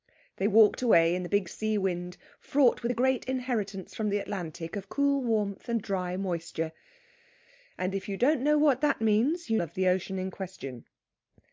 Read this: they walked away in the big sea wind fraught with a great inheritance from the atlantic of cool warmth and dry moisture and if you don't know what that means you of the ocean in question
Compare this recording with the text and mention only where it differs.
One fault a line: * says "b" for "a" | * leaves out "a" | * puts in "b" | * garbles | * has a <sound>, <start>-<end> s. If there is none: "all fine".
all fine